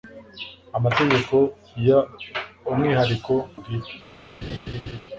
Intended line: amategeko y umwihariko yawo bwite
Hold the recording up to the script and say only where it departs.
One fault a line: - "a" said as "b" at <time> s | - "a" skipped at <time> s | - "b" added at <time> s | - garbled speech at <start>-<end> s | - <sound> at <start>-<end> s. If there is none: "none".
- "yawo" skipped at 3.3 s
- laugh at 4.4-5.0 s